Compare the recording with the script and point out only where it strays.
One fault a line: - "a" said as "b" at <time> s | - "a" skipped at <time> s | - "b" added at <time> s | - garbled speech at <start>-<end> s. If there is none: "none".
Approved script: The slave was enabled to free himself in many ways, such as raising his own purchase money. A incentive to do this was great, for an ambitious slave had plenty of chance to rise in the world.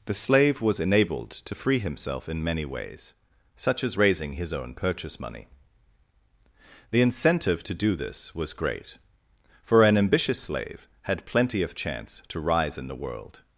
- "A" said as "The" at 6.9 s